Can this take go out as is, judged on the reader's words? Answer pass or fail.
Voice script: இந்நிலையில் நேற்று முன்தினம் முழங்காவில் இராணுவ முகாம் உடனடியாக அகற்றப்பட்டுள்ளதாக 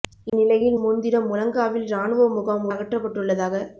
fail